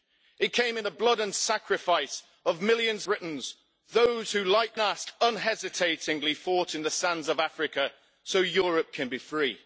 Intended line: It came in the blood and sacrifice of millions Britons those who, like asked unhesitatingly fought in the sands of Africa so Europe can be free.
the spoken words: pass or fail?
pass